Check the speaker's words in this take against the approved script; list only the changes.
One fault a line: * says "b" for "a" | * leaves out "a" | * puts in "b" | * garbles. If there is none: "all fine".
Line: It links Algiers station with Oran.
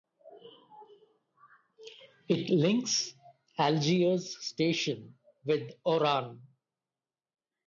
all fine